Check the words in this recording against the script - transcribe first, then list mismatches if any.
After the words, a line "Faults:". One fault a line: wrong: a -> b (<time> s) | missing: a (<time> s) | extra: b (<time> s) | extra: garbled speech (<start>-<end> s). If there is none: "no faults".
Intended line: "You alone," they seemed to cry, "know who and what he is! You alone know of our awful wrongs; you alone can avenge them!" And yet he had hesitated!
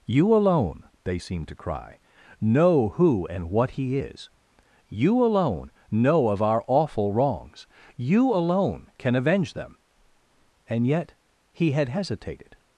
"You alone," they seemed to cry, "know who and what he is! You alone know of our awful wrongs; you alone can avenge them!" And yet he had hesitated!
Faults:
no faults